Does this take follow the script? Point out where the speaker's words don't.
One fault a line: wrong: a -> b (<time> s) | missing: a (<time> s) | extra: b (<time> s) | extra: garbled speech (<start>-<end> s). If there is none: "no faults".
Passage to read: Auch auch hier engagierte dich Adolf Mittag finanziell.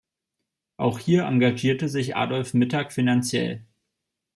missing: auch (1.0 s)
wrong: dich -> sich (1.9 s)